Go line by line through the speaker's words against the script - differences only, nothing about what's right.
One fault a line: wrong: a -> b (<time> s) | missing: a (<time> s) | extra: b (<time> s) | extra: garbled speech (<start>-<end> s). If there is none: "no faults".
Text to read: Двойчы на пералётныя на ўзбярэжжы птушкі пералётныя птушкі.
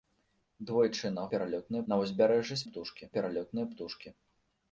no faults